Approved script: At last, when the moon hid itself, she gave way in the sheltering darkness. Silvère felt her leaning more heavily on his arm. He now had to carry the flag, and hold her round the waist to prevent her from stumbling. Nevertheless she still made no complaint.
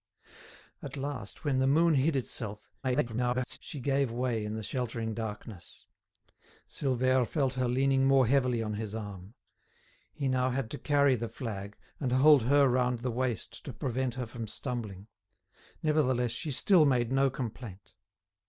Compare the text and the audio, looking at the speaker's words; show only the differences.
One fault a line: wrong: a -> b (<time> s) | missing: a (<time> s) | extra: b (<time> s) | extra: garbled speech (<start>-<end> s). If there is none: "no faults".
extra: garbled speech (2.8-3.6 s)